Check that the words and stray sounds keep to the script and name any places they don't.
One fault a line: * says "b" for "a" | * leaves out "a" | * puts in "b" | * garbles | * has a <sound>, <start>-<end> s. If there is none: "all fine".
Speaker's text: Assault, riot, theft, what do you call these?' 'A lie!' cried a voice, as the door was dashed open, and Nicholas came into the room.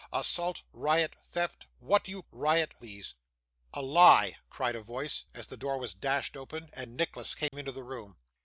* says "riot" for "call"
* has a dropout, 7.5-7.5 s